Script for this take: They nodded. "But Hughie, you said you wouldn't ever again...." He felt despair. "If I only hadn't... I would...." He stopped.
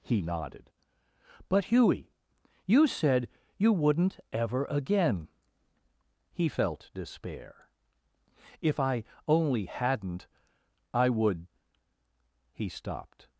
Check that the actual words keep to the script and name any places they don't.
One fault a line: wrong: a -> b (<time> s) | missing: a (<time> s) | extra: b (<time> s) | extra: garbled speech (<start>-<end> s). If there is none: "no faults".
wrong: They -> He (0.0 s)